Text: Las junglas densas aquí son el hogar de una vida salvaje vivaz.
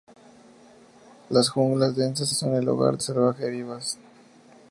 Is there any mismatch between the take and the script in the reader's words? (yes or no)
yes